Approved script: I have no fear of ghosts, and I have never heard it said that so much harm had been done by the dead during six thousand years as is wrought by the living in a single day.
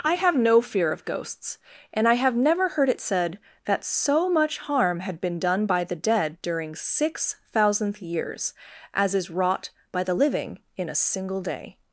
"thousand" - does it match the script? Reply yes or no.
no